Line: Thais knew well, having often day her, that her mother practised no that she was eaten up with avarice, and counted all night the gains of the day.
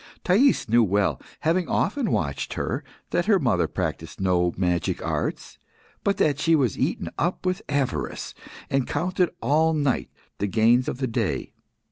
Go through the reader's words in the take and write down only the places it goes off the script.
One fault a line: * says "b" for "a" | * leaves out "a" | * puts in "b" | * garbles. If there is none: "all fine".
* says "watched" for "day"
* puts in "magic arts but"